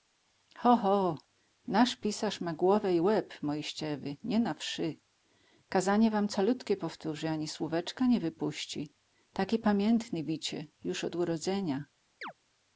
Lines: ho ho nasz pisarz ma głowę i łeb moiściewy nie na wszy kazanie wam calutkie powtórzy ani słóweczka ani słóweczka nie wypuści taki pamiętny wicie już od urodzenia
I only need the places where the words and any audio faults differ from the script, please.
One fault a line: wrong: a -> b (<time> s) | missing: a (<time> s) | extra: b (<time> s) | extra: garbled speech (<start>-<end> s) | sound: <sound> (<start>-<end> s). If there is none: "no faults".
missing: ani słóweczka (8.1 s)
sound: chirp (12.2-12.3 s)